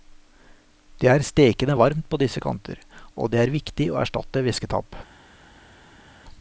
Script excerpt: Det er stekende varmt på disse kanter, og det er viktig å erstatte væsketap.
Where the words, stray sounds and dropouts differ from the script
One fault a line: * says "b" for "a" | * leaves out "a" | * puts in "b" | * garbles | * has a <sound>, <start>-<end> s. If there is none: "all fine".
all fine